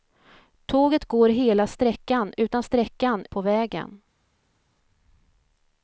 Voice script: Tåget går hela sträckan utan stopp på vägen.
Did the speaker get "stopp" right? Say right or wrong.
wrong